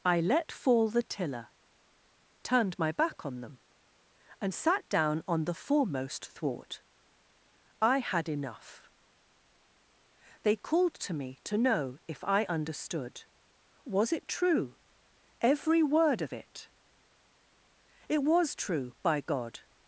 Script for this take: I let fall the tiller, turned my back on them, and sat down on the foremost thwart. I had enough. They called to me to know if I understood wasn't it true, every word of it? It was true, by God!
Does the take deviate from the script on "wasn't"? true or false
true